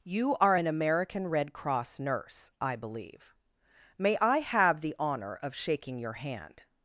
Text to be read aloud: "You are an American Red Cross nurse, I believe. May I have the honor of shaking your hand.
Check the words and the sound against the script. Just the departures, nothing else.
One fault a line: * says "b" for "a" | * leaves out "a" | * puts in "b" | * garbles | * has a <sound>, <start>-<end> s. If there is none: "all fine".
all fine